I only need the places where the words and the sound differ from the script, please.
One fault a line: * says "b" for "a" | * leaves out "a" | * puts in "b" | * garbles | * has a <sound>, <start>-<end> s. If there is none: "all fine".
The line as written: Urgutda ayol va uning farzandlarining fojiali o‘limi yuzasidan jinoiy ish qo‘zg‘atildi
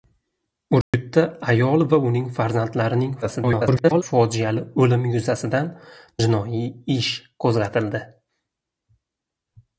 * has a dropout, 0.8-0.9 s
* garbles